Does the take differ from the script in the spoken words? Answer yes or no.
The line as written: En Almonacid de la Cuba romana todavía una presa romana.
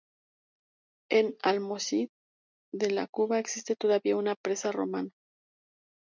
yes